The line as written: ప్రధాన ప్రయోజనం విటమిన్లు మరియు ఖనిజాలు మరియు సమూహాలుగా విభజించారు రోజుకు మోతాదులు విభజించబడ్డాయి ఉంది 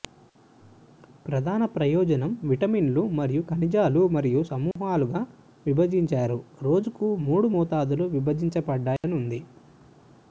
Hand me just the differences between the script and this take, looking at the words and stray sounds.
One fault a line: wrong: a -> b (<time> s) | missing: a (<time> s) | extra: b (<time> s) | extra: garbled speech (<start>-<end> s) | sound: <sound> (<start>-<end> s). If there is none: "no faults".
sound: dropout (4.7-4.8 s)
extra: మూడు (7.3 s)
sound: dropout (9.0-9.0 s)